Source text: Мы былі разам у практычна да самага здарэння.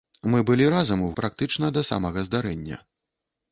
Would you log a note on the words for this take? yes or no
no